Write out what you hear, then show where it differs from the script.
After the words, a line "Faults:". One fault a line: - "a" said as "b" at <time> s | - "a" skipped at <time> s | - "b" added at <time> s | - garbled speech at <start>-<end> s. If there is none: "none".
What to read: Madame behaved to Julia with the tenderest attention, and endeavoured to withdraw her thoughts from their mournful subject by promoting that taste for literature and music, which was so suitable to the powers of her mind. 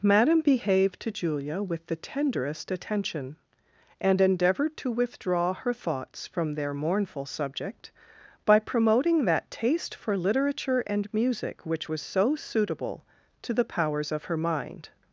Madame behaved to Julia with the tenderest attention, and endeavoured to withdraw her thoughts from their mournful subject by promoting that taste for literature and music, which was so suitable to the powers of her mind.
Faults:
none